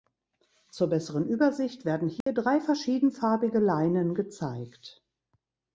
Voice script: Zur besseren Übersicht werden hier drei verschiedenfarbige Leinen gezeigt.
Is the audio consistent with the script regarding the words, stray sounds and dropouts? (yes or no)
no